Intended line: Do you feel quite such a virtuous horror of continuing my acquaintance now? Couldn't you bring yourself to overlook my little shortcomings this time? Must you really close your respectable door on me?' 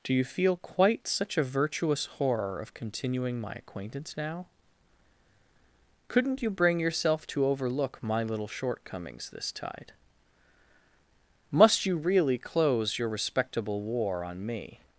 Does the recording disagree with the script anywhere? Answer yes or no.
yes